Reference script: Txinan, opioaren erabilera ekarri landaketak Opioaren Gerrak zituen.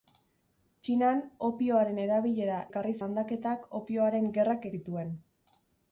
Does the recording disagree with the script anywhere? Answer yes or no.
no